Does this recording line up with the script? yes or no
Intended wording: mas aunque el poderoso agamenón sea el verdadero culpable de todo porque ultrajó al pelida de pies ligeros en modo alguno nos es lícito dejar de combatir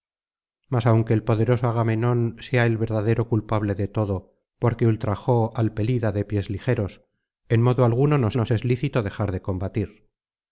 no